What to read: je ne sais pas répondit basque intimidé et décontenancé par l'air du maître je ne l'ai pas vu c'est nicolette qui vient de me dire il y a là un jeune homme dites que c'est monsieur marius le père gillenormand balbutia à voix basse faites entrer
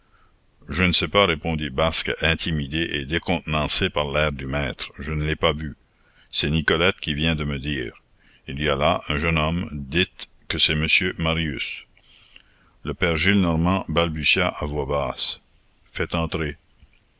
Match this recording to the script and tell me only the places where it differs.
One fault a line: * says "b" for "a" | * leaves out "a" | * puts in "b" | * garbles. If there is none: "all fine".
all fine